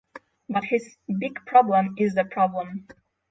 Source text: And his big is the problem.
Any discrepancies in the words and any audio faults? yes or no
yes